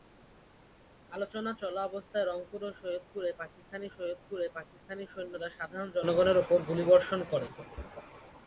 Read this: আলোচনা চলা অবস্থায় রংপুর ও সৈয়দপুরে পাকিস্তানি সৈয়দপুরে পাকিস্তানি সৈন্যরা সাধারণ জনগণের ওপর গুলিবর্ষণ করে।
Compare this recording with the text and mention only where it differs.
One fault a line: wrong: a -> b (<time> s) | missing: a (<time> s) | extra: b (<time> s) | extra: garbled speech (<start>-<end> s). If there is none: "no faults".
no faults